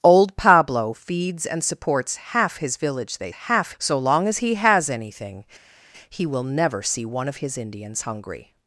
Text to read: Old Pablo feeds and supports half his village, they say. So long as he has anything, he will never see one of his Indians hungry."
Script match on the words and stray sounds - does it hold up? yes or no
no